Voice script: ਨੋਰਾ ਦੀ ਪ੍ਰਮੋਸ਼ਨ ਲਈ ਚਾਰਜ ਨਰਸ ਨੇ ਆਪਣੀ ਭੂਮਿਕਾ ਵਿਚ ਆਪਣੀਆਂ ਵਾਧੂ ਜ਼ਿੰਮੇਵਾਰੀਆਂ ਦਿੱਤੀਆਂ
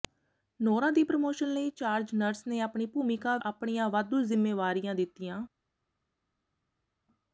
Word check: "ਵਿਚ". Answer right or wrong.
wrong